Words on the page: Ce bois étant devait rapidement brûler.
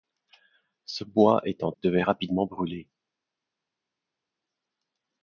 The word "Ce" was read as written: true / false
true